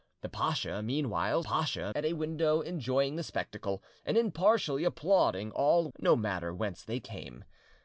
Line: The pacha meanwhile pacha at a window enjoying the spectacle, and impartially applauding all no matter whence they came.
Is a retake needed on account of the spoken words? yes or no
no